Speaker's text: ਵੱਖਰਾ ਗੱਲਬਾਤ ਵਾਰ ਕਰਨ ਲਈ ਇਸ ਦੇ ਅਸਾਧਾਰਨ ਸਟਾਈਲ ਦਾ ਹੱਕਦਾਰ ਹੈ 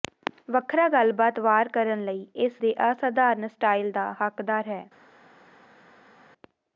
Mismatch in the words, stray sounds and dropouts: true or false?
false